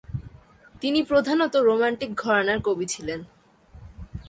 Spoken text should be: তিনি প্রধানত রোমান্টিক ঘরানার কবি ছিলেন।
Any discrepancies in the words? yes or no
no